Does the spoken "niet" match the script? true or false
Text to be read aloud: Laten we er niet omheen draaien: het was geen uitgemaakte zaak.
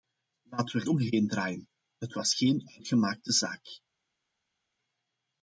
false